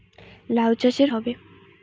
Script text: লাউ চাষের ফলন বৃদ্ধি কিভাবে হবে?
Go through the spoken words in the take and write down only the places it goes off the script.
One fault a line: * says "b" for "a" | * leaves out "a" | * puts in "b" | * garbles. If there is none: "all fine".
* leaves out "ফলন বৃদ্ধি কিভাবে"